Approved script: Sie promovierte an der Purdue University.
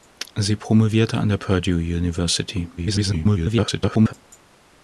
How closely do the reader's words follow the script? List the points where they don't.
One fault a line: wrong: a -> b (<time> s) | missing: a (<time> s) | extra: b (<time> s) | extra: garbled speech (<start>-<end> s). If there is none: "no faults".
extra: garbled speech (2.8-4.1 s)